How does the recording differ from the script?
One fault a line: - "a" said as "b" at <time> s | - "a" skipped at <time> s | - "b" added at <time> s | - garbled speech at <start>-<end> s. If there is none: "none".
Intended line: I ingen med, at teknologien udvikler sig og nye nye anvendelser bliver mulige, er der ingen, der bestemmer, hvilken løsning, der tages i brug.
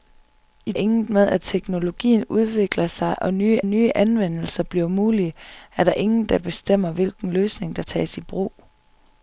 none